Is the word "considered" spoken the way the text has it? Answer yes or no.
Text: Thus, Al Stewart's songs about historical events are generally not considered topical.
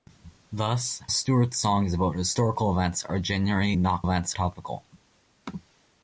no